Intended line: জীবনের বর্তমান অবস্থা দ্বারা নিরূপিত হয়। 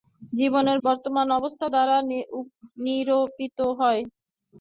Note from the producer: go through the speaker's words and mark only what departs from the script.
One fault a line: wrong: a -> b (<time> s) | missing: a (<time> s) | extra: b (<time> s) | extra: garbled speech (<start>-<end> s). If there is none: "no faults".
no faults